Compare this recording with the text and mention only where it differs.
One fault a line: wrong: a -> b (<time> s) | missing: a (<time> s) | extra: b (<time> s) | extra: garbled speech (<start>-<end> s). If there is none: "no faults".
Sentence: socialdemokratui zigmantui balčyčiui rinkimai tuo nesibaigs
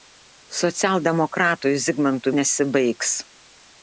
missing: balčyčiui rinkimai tuo (2.3 s)